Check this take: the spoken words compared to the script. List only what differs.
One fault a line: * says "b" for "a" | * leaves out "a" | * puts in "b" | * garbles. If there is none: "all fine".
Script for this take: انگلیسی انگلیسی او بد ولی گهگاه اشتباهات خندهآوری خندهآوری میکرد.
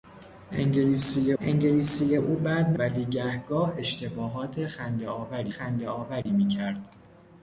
all fine